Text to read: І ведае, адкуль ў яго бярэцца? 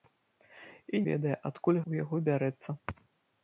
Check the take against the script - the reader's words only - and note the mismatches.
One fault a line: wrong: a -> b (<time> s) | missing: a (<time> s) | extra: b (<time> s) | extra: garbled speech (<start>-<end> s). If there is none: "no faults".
no faults